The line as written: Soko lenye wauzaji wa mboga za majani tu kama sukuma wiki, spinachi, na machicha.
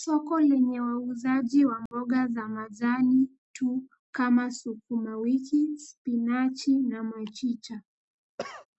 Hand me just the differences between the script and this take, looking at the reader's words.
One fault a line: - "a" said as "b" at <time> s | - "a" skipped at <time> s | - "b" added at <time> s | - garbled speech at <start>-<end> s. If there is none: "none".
none